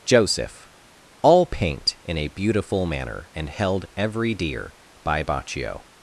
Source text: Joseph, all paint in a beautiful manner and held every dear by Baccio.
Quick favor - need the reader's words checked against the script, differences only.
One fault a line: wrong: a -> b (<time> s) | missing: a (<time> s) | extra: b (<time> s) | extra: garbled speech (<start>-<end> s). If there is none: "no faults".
no faults